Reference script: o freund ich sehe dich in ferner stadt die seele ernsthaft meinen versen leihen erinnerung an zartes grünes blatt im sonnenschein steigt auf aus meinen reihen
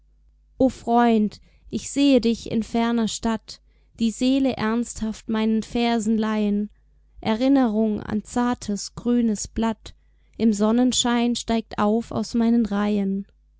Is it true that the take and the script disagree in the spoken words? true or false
false